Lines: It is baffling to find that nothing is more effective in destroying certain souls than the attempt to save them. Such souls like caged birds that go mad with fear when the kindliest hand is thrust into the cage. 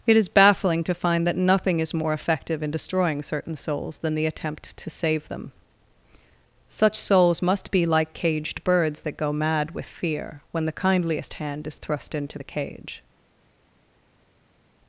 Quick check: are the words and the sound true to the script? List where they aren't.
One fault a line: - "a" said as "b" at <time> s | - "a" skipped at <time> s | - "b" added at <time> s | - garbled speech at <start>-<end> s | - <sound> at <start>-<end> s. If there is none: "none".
- "must be" added at 7.4 s